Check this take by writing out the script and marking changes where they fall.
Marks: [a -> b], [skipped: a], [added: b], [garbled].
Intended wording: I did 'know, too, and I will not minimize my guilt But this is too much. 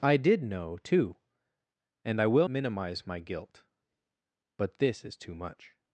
I did 'know, too, and I will [skipped: not] minimize my guilt But this is too much.